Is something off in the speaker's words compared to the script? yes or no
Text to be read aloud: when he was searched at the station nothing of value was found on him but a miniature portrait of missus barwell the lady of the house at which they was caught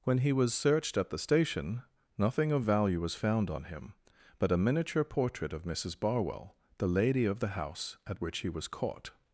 yes